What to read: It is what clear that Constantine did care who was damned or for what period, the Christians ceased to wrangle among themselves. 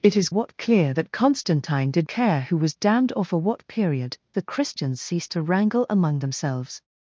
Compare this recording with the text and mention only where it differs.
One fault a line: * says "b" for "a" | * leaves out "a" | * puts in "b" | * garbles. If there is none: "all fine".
all fine